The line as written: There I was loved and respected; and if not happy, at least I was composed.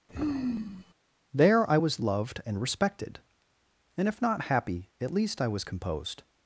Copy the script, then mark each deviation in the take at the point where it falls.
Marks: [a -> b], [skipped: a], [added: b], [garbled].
There I was loved and respected; and if not happy, at least I was composed.